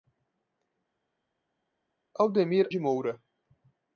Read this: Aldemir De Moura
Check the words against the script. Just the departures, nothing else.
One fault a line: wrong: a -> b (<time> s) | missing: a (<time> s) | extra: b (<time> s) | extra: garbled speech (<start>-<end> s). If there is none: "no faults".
no faults